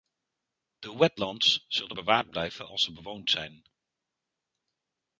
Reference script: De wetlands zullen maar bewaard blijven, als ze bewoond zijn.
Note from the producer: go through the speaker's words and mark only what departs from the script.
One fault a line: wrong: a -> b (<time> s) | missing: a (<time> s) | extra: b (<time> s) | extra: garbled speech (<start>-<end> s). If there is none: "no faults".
missing: maar (2.0 s)